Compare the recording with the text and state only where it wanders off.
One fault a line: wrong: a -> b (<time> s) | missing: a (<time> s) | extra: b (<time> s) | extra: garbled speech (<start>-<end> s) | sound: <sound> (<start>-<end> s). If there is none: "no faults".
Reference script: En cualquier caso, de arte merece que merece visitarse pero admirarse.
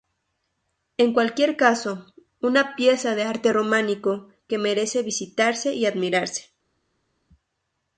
extra: una pieza (2.4 s)
wrong: merece -> románico (3.5 s)
wrong: pero -> y (5.7 s)